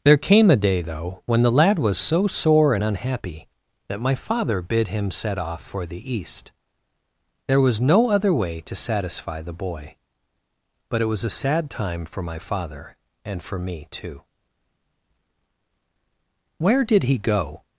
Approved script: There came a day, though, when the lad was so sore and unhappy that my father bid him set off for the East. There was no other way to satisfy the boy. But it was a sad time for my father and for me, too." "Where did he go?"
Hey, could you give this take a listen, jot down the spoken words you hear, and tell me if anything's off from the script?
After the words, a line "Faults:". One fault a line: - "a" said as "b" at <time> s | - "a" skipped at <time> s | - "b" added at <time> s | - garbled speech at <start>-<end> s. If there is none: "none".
There came a day, though, when the lad was so sore and unhappy that my father bid him set off for the East. There was no other way to satisfy the boy. But it was a sad time for my father and for me, too." "Where did he go?"
Faults:
none